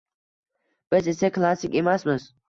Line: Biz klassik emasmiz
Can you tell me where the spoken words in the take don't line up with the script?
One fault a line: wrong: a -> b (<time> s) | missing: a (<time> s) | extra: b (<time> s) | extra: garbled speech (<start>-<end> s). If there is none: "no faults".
extra: esa (1.1 s)